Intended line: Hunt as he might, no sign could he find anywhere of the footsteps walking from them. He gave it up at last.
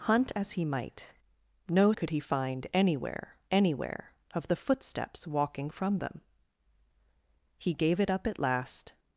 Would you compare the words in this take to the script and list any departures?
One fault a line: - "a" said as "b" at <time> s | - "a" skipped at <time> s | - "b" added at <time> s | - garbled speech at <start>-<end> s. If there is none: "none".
- "sign" skipped at 1.9 s
- "anywhere" added at 3.5 s